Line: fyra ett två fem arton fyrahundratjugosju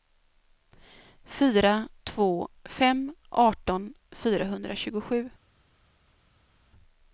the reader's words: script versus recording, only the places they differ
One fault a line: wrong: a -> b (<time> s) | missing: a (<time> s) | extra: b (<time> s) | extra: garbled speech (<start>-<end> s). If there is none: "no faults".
missing: ett (1.9 s)